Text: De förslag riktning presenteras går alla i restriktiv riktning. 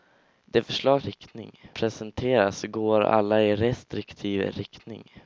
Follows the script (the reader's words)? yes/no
yes